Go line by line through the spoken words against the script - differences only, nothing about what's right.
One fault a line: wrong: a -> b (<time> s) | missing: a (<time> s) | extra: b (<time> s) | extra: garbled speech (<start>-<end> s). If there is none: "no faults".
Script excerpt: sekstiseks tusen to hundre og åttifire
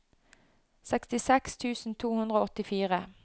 no faults